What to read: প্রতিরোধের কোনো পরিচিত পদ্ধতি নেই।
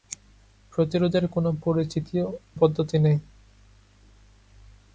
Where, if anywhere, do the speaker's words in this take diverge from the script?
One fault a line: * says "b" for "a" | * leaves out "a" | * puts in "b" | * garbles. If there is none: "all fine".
* leaves out "পরিচিত"